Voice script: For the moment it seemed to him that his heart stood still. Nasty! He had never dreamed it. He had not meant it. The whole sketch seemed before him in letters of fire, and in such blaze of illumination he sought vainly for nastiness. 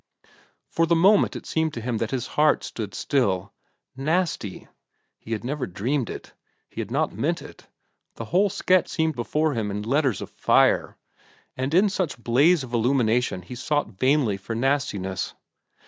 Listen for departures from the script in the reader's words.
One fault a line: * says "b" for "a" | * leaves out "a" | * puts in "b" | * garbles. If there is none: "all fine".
all fine